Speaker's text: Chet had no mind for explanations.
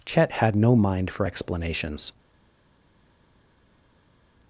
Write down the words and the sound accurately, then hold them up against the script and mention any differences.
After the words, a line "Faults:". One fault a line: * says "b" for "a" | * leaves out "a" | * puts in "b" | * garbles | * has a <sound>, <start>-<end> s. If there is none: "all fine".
Chet had no mind for explanations.
Faults:
all fine